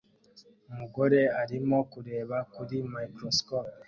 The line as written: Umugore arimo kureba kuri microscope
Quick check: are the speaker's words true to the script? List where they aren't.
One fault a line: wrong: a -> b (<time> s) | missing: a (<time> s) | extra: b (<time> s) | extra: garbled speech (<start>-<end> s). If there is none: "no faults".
no faults